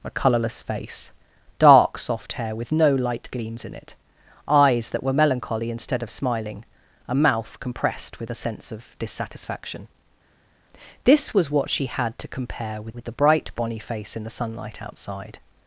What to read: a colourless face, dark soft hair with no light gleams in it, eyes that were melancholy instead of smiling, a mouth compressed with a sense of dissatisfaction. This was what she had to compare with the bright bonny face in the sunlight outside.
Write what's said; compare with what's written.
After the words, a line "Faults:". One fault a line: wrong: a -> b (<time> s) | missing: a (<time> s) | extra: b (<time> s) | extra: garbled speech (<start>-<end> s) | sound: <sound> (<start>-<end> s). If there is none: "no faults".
a colourless face, dark soft hair with no light gleams in it, eyes that were melancholy instead of smiling, a mouth compressed with a sense of dissatisfaction. This was what she had to compare with with the bright bonny face in the sunlight outside.
Faults:
extra: with (12.9 s)